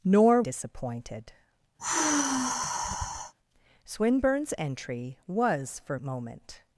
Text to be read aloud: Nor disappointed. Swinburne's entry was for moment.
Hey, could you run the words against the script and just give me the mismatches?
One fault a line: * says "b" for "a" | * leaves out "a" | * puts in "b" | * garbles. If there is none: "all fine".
all fine